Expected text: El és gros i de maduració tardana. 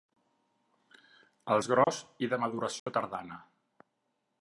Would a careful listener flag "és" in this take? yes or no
no